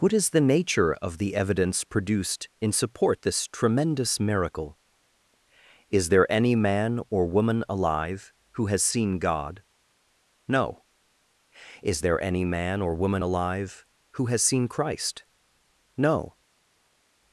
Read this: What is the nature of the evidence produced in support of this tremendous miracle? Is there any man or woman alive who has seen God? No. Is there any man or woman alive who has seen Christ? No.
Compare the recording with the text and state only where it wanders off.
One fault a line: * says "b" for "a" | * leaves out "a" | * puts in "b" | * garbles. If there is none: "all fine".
* leaves out "of"